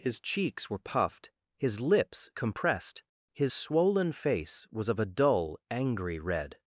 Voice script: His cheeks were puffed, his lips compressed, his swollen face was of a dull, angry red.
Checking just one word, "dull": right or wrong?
right